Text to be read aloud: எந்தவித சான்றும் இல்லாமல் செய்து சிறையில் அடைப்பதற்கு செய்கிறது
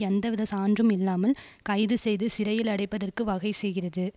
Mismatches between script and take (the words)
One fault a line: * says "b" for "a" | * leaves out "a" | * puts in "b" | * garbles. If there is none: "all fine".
* puts in "கைது"
* puts in "வகை"